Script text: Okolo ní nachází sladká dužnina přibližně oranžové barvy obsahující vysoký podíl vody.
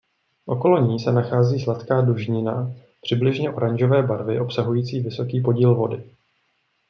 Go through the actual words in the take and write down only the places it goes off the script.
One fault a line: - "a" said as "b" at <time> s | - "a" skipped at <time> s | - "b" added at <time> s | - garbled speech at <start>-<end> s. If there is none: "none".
- "se" added at 1.0 s